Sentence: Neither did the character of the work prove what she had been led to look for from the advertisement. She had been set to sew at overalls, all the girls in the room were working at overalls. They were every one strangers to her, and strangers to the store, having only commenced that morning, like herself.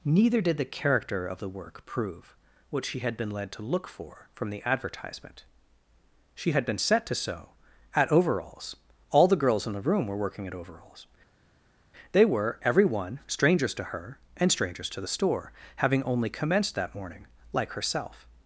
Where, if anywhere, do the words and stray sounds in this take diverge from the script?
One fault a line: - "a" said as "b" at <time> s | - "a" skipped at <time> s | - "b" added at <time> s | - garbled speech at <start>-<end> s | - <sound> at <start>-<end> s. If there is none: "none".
none